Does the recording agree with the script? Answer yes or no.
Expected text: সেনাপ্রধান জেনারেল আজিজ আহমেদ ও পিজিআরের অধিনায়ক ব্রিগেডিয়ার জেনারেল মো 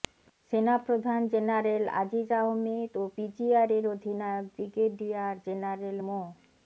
yes